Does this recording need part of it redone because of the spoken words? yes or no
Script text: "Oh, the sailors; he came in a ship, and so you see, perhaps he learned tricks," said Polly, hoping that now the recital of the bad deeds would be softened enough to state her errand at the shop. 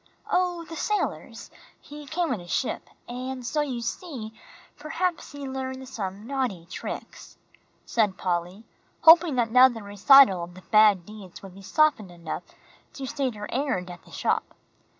yes